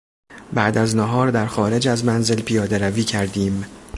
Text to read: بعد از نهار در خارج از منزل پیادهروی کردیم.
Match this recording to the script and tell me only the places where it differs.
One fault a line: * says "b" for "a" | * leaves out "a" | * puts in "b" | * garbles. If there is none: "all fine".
all fine